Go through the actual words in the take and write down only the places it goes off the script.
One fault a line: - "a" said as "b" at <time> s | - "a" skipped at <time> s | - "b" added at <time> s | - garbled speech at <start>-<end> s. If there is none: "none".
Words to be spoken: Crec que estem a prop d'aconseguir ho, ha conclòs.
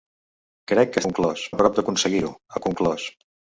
- "estem" said as "conclòs" at 1.1 s